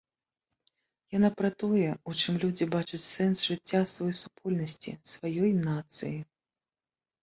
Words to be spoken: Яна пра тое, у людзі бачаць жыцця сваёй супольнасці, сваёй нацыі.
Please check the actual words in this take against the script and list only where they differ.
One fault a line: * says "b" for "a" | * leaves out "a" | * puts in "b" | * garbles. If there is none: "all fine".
* puts in "чым"
* puts in "сэнс"